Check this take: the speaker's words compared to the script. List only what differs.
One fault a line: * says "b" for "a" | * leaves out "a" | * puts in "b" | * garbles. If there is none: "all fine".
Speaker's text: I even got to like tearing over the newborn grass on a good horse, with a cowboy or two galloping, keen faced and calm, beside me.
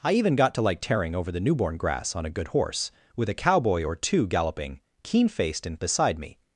* leaves out "calm"